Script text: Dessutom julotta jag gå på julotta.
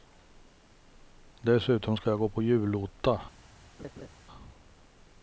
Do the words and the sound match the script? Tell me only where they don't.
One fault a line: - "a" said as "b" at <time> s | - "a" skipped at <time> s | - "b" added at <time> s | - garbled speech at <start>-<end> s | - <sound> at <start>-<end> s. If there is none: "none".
- "julotta" said as "ska" at 2.0 s
- laugh at 3.8-4.1 s